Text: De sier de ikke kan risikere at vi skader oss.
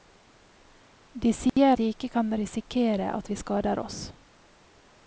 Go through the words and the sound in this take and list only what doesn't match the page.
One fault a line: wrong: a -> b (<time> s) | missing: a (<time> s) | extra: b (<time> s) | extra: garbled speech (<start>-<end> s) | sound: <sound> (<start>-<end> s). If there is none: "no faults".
sound: dropout (1.5-1.6 s)